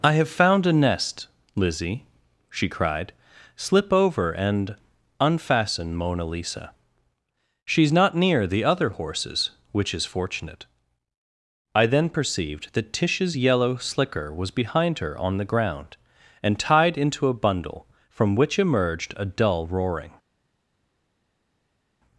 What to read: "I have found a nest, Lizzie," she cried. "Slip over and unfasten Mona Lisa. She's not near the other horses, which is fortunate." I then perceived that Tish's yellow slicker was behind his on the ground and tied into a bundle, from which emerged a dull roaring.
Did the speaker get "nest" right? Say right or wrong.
right